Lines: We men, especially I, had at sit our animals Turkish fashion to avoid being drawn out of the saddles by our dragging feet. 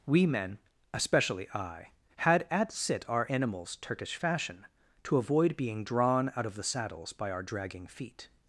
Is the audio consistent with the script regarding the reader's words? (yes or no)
yes